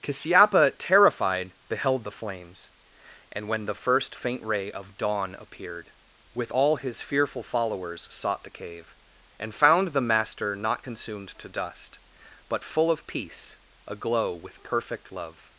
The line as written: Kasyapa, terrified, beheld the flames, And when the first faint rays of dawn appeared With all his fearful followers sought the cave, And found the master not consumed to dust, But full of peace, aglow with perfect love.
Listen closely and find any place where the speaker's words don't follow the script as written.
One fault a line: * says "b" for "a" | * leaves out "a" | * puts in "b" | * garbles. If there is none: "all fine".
* says "ray" for "rays"